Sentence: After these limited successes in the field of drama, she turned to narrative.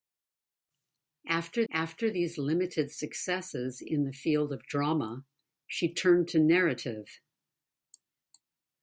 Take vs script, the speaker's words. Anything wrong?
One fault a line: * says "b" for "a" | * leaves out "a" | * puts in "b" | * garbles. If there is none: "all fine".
* puts in "after"